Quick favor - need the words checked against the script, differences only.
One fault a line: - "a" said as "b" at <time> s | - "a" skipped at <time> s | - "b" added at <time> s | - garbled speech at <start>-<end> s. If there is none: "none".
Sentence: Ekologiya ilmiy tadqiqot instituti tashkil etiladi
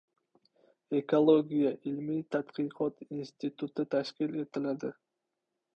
none